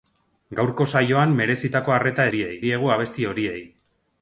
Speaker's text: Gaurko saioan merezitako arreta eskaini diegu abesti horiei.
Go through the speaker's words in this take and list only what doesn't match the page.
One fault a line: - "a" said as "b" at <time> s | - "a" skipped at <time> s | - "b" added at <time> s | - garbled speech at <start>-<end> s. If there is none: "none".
- "eskaini" said as "horiei" at 2.3 s